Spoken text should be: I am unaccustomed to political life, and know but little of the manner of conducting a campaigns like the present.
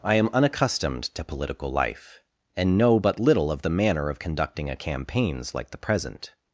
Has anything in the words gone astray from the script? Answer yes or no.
no